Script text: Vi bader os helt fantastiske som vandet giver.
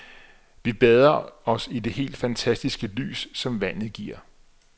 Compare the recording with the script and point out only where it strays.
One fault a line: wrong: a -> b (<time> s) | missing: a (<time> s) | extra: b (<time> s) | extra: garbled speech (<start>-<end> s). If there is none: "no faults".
extra: i det (1.7 s)
extra: lys (2.9 s)